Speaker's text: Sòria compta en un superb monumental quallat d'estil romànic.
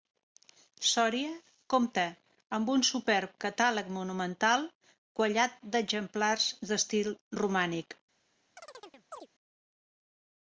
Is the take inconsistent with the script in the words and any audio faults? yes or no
yes